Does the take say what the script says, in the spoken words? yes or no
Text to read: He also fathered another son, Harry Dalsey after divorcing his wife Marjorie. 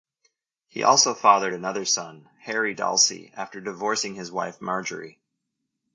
yes